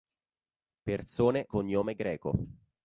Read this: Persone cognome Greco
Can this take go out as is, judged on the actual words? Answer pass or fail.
pass